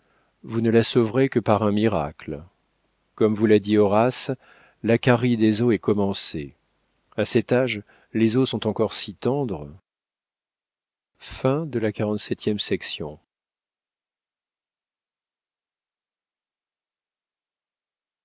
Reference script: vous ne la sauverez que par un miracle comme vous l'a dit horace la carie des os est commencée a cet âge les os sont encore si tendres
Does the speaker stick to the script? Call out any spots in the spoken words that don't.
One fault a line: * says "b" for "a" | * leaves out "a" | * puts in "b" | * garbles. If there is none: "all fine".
all fine